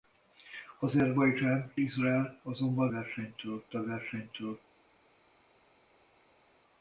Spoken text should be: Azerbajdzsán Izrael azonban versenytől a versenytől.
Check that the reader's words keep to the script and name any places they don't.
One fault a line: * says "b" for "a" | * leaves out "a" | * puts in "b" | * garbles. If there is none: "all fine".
all fine